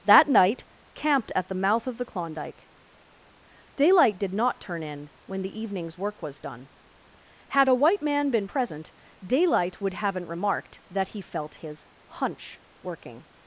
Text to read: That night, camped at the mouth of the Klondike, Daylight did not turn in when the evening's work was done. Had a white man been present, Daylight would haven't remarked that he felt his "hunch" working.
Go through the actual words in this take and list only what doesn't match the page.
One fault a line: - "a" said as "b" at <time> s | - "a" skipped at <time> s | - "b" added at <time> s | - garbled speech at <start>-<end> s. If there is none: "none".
none